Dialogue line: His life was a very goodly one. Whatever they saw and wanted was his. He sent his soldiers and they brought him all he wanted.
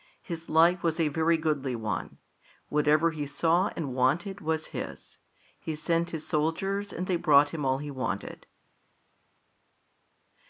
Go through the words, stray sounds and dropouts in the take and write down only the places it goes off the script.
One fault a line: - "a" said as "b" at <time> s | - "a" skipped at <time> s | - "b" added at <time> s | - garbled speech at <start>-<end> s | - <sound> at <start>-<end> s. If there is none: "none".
- "they" said as "he" at 3.1 s